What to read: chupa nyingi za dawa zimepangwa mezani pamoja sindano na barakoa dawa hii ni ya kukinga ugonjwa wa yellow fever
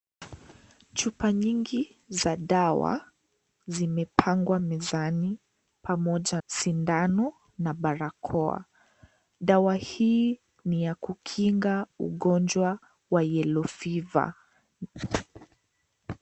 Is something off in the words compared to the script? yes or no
no